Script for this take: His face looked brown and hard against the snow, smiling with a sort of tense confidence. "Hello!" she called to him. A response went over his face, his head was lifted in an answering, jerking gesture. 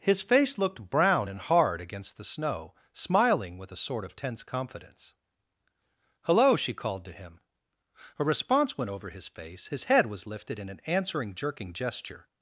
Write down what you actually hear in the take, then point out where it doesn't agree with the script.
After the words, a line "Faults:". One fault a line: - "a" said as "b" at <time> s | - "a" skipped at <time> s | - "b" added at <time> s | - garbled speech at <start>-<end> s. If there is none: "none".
His face looked brown and hard against the snow, smiling with a sort of tense confidence. "Hello!" she called to him. A response went over his face, his head was lifted in an answering, jerking gesture.
Faults:
none